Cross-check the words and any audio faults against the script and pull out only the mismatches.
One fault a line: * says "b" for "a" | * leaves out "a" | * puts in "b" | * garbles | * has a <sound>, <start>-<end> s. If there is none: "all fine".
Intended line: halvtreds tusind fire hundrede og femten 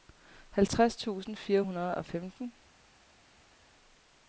all fine